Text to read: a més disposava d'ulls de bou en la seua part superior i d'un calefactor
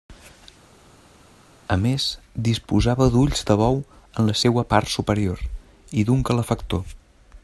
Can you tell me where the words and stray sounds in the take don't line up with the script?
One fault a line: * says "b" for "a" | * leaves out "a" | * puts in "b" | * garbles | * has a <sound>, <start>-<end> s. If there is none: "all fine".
all fine